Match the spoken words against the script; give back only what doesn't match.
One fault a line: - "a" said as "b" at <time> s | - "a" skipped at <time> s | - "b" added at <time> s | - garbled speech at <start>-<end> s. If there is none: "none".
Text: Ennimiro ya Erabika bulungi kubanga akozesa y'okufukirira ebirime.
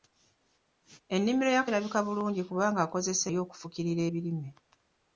none